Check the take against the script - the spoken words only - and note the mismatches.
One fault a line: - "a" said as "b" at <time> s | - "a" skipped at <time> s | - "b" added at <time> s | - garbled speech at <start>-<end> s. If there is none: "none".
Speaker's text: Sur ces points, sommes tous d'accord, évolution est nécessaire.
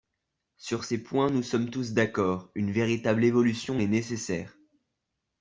- "nous" added at 1.3 s
- "une véritable" added at 2.5 s